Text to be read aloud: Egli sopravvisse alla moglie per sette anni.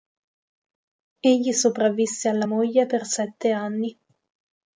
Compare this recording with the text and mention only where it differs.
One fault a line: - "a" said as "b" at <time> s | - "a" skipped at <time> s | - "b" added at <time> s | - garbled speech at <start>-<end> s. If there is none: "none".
none